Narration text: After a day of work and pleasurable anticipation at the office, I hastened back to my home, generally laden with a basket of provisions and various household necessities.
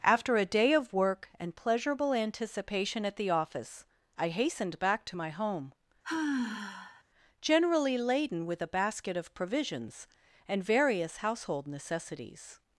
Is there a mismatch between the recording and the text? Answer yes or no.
no